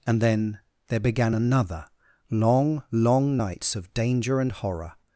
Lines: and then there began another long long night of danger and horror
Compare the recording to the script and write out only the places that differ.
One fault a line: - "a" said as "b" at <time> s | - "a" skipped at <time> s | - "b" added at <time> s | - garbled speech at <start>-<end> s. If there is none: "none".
- "night" said as "nights" at 3.4 s